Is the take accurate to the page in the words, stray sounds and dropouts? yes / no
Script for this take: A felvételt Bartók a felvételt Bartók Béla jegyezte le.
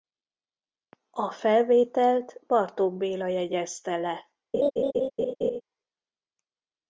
no